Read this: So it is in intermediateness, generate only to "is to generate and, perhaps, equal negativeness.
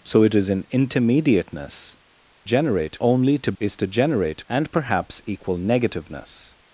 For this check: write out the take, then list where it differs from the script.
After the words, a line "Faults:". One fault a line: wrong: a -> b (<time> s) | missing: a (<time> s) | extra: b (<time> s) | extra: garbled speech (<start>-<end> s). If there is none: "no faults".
So it is in intermediateness, generate only to "is to generate and, perhaps, equal negativeness.
Faults:
no faults